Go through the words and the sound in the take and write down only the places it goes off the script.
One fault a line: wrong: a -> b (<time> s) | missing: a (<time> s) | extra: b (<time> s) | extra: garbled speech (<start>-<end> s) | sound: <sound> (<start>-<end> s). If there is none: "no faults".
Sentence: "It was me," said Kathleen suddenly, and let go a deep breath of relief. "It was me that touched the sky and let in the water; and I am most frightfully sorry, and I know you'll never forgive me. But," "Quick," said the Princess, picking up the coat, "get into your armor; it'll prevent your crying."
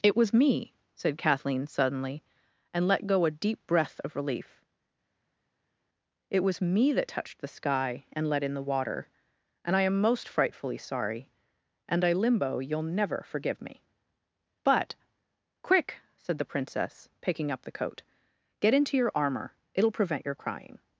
wrong: know -> limbo (12.1 s)